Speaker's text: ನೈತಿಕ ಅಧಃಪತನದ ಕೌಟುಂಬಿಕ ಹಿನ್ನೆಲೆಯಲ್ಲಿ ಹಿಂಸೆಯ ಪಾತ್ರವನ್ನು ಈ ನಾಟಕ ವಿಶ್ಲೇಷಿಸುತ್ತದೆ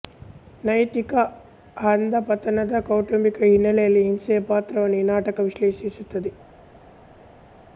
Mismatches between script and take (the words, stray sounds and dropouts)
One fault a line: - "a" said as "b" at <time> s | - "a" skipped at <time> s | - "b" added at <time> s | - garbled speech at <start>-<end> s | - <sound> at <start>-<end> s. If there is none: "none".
none